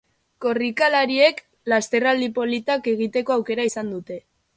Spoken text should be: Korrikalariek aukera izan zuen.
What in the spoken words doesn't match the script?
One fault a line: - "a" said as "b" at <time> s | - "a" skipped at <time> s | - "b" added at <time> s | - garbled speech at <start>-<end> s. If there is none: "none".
- "lasterraldi politak egiteko" added at 1.7 s
- "zuen" said as "dute" at 4.0 s